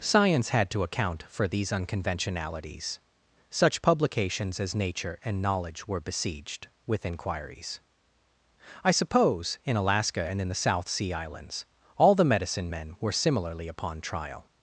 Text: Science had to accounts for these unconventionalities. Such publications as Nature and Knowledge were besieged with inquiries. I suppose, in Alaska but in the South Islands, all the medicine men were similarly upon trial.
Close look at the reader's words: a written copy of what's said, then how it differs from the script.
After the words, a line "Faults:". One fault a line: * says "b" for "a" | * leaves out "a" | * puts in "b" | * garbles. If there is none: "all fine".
Science had to account for these unconventionalities. Such publications as Nature and Knowledge were besieged with inquiries. I suppose, in Alaska and in the South Sea Islands, all the medicine men were similarly upon trial.
Faults:
* says "account" for "accounts"
* says "and" for "but"
* puts in "Sea"